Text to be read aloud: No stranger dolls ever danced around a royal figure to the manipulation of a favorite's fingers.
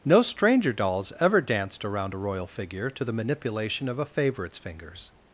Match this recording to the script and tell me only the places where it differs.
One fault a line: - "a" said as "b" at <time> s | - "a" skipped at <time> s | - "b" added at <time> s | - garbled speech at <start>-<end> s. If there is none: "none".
none